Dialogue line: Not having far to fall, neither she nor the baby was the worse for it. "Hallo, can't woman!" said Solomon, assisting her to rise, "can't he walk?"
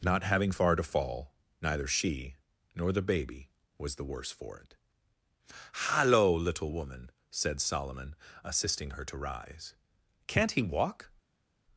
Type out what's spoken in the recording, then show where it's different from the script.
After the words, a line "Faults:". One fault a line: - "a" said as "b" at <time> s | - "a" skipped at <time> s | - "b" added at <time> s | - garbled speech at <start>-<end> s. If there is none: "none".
Not having far to fall, neither she nor the baby was the worse for it. "Hallo, little woman!" said Solomon, assisting her to rise, "can't he walk?"
Faults:
- "can't" said as "little" at 6.3 s